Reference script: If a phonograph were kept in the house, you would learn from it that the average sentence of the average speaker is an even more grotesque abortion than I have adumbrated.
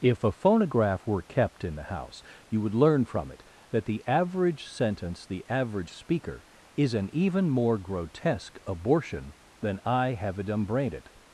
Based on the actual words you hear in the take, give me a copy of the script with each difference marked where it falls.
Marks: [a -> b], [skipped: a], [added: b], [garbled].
If a phonograph were kept in the house, you would learn from it that the average sentence [skipped: of] the average speaker is an even more grotesque abortion than I have adumbrated.